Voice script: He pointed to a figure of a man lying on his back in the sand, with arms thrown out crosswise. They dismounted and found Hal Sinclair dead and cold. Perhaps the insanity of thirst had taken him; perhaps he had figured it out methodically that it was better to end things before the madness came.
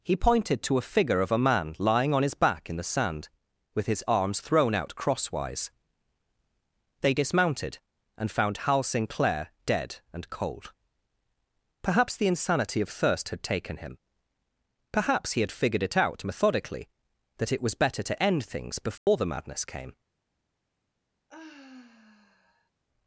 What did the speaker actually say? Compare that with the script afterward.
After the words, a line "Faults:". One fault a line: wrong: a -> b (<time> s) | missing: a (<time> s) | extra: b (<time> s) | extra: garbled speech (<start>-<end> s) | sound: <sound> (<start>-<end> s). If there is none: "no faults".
He pointed to a figure of a man lying on his back in the sand, with his arms thrown out crosswise. They dismounted and found Hal Sinclair dead and cold. Perhaps the insanity of thirst had taken him; perhaps he had figured it out methodically that it was better to end things before the madness came.
Faults:
extra: his (3.9 s)
sound: dropout (19.0-19.1 s)
sound: sigh (21.3-22.7 s)